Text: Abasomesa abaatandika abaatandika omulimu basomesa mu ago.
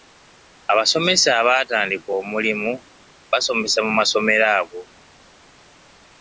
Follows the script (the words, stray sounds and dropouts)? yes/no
no